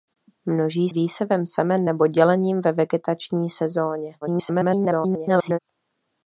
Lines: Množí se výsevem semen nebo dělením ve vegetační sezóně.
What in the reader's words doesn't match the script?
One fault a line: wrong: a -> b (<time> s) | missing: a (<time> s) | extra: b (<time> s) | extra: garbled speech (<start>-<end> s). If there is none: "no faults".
missing: se (0.9 s)
extra: garbled speech (4.2-5.6 s)